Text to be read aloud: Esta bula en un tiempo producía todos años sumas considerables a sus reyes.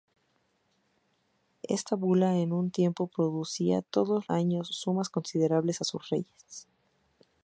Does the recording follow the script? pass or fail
pass